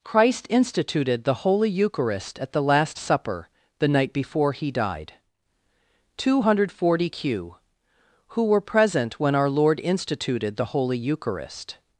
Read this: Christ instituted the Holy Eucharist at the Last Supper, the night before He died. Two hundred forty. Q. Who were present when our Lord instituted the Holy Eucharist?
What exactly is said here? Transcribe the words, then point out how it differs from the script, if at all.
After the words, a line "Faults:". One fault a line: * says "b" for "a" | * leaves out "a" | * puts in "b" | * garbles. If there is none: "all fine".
Christ instituted the Holy Eucharist at the Last Supper, the night before He died. Two hundred forty. Q. Who were present when our Lord instituted the Holy Eucharist?
Faults:
all fine